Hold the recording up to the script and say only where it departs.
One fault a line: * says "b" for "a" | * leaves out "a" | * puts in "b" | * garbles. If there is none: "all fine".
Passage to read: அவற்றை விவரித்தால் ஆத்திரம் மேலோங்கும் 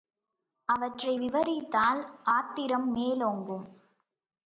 all fine